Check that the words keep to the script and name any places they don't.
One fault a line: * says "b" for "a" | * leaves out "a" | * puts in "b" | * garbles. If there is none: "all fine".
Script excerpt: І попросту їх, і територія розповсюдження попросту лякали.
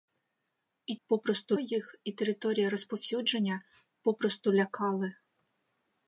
all fine